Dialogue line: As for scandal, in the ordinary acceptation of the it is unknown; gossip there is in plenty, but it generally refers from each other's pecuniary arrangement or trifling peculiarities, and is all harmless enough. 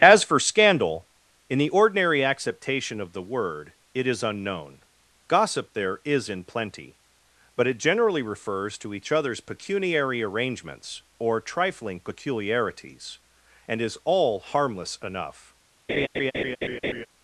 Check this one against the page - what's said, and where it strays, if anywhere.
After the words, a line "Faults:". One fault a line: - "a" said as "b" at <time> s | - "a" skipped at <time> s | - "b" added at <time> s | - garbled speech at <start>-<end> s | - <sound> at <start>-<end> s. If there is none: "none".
As for scandal, in the ordinary acceptation of the word, it is unknown; gossip there is in plenty, but it generally refers to each other's pecuniary arrangements or trifling peculiarities, and is all harmless enough.
Faults:
- "word" added at 3.2 s
- "from" said as "to" at 8.8 s
- "arrangement" said as "arrangements" at 10.2 s
- laugh at 15.9-17.1 s